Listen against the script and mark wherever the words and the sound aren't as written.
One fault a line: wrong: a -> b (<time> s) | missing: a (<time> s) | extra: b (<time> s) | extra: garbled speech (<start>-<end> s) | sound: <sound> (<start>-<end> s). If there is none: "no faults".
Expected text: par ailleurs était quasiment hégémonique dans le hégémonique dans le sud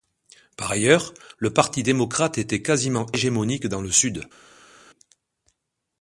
wrong: était quasiment hégémonique dans le -> le parti démocrate était quasiment (1.4 s)